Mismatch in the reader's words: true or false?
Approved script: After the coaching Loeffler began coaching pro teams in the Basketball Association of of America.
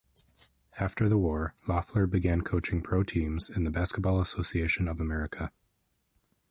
true